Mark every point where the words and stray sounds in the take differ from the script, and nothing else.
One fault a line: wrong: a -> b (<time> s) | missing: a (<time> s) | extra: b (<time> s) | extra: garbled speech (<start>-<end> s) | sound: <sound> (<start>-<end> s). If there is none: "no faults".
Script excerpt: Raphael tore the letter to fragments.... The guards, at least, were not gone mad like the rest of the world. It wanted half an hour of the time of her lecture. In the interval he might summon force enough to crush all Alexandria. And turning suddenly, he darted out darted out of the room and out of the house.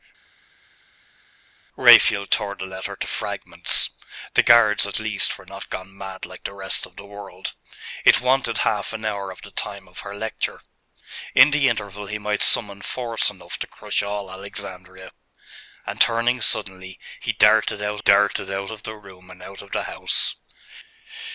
no faults